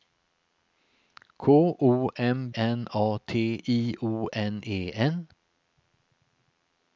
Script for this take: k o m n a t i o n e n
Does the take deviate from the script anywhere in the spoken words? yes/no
no